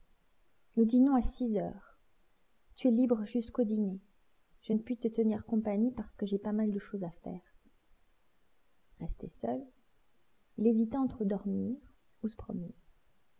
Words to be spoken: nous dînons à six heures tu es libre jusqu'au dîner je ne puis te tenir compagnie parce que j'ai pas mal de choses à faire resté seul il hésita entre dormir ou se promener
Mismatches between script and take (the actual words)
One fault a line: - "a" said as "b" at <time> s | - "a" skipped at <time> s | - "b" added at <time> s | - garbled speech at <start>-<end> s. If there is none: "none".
none